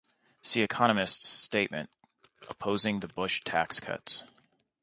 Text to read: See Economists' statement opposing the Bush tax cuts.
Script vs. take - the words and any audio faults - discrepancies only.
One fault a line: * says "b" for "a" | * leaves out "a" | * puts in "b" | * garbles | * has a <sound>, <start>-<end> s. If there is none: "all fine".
all fine